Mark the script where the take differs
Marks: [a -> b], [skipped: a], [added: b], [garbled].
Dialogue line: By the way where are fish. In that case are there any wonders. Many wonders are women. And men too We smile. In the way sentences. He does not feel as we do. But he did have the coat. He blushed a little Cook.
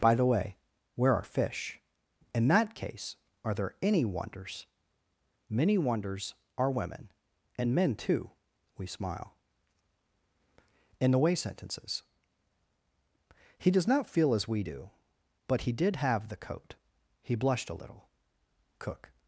By the way where are fish. In that case are there any wonders. Many wonders are women. And men too We smile. In the way sentences. He does not feel as we do. But he did have the coat. He blushed a little Cook.